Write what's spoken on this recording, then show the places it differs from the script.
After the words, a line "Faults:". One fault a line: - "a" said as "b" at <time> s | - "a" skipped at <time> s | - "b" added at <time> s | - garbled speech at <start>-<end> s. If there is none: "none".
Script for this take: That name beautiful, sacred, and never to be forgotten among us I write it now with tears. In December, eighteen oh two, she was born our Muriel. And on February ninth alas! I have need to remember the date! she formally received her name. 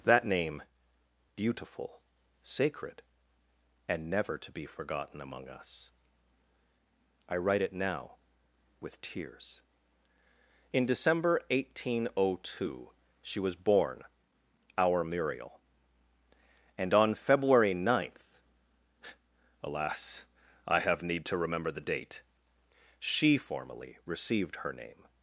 That name beautiful, sacred, and never to be forgotten among us I write it now with tears. In December, eighteen oh two, she was born our Muriel. And on February ninth alas! I have need to remember the date! she formally received her name.
Faults:
none